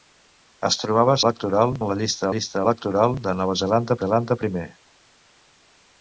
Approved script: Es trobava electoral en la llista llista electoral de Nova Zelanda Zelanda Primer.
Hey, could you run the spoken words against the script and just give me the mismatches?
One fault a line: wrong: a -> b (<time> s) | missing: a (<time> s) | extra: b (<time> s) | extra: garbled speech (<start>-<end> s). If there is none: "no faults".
no faults